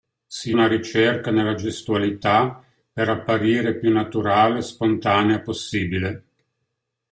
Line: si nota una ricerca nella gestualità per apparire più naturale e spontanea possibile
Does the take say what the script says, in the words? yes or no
no